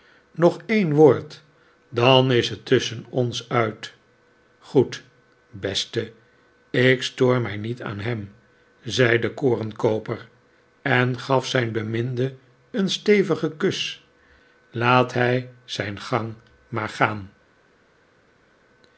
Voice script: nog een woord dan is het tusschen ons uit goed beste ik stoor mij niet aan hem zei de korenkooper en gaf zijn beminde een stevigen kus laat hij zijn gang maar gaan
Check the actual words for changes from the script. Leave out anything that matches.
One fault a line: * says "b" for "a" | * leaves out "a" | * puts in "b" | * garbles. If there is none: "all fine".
all fine